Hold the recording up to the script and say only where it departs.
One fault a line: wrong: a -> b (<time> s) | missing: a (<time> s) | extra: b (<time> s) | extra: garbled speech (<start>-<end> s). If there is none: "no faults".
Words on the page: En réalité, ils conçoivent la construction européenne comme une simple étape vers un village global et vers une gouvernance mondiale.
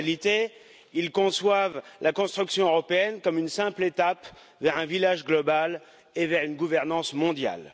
no faults